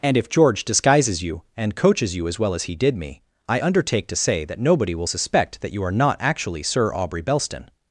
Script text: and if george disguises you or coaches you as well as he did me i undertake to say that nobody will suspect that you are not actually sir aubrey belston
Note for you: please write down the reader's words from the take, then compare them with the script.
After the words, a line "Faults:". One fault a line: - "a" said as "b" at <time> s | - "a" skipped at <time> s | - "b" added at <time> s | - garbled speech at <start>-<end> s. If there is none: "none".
and if george disguises you and coaches you as well as he did me i undertake to say that nobody will suspect that you are not actually sir aubrey belston
Faults:
- "or" said as "and" at 1.6 s